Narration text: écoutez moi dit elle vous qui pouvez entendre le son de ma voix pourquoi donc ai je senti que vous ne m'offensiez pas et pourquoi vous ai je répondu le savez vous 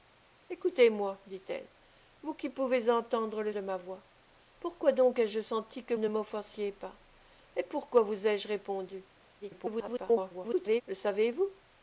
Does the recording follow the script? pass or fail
fail